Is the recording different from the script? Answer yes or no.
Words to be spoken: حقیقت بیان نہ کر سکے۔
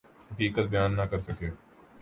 no